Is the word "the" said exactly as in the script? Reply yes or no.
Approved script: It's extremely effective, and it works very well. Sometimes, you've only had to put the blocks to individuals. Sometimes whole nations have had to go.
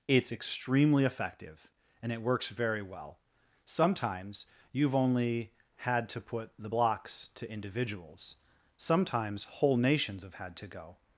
yes